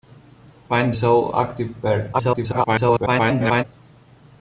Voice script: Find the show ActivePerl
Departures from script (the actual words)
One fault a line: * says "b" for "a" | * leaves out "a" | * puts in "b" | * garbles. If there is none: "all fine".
* leaves out "the"
* garbles